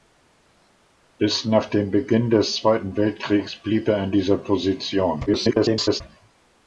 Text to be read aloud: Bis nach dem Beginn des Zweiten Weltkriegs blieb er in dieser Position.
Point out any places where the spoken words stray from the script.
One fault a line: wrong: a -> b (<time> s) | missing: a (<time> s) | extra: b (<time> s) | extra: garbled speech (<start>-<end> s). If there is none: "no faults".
extra: garbled speech (5.3-6.0 s)